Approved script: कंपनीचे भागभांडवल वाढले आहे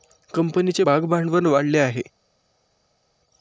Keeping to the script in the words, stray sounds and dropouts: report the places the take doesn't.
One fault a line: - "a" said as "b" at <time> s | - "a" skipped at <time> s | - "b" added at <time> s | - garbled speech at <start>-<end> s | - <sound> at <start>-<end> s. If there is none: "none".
none